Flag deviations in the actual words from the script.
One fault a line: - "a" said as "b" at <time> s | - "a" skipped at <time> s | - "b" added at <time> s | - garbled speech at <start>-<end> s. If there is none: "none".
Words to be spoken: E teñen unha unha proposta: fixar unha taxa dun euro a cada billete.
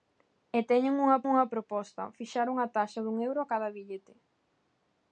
none